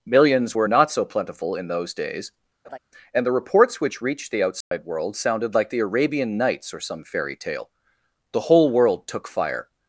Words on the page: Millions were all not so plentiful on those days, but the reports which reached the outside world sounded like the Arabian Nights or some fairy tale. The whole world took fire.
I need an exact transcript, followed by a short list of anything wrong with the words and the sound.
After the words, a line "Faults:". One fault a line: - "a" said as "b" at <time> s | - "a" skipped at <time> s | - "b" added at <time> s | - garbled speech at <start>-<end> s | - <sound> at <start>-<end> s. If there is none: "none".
Millions were not so plentiful in those days, and the reports which reached the outside world sounded like the Arabian Nights or some fairy tale. The whole world took fire.
Faults:
- "all" skipped at 0.7 s
- "on" said as "in" at 1.6 s
- laugh at 2.6-2.8 s
- "but" said as "and" at 3.1 s
- dropout at 4.6-4.7 s